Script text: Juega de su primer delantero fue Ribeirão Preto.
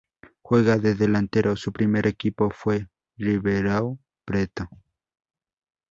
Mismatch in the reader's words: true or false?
true